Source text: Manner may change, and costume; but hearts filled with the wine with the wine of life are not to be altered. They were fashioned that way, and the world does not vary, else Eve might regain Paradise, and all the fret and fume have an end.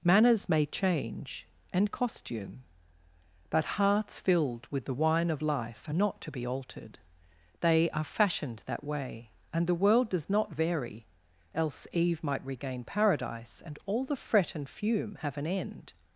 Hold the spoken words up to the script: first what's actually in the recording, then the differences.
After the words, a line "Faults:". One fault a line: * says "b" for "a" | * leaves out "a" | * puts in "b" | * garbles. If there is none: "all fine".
Manners may change, and costume; but hearts filled with the wine of life are not to be altered. They are fashioned that way, and the world does not vary, else Eve might regain Paradise, and all the fret and fume have an end.
Faults:
* says "Manners" for "Manner"
* leaves out "with the wine"
* says "are" for "were"